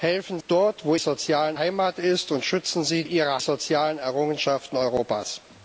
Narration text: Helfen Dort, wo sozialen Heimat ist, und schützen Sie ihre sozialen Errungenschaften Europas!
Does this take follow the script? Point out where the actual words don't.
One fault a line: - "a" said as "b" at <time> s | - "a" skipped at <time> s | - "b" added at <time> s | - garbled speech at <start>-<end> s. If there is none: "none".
none